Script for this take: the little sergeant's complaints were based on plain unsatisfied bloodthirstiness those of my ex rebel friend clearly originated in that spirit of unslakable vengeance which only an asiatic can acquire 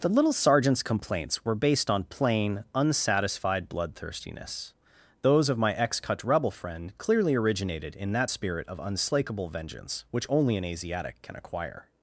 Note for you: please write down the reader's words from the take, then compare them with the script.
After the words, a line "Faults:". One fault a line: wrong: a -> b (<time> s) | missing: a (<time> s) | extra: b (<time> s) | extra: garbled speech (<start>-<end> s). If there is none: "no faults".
the little sergeant's complaints were based on plain unsatisfied bloodthirstiness those of my ex cut rebel friend clearly originated in that spirit of unslakable vengeance which only an asiatic can acquire
Faults:
extra: cut (6.0 s)